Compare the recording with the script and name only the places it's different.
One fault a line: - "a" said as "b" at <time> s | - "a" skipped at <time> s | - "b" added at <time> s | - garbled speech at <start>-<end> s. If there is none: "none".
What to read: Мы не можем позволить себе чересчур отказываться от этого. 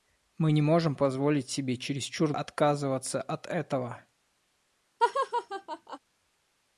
none